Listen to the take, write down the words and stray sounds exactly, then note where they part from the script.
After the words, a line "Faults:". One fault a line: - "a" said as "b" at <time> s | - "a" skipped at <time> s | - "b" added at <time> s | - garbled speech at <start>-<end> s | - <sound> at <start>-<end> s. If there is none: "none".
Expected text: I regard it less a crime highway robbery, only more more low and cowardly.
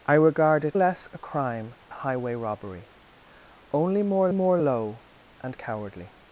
I regard it less a crime highway robbery, only more more low and cowardly.
Faults:
none